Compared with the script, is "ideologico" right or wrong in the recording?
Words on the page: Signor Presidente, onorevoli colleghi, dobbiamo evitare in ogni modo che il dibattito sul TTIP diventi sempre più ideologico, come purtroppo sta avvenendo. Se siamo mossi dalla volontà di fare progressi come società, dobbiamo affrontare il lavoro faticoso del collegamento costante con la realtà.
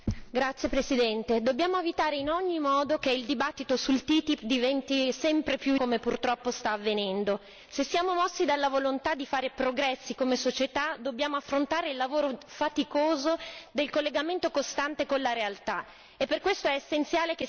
wrong